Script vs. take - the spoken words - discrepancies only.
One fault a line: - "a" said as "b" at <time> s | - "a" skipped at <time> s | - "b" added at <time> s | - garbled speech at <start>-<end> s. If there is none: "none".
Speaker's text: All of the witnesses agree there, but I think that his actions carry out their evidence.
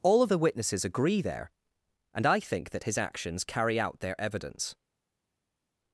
- "but" said as "and" at 2.1 s